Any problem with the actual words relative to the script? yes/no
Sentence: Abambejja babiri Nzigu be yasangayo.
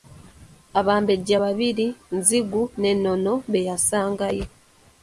yes